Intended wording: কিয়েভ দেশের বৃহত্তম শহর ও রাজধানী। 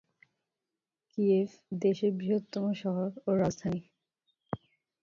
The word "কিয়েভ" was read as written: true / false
true